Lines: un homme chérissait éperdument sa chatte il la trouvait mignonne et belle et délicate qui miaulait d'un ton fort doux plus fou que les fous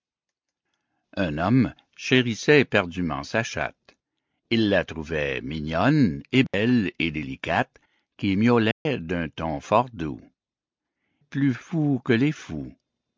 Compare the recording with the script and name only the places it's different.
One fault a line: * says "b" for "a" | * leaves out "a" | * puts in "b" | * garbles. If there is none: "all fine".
all fine